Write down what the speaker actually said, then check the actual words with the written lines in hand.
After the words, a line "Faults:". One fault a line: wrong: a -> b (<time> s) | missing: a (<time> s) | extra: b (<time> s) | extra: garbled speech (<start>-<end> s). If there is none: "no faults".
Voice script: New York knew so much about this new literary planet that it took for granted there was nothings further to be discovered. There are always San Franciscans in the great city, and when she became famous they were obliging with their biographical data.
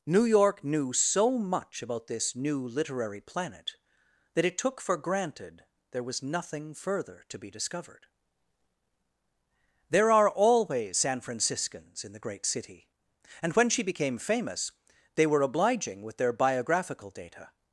New York knew so much about this new literary planet that it took for granted there was nothing further to be discovered. There are always San Franciscans in the great city, and when she became famous they were obliging with their biographical data.
Faults:
wrong: nothings -> nothing (6.2 s)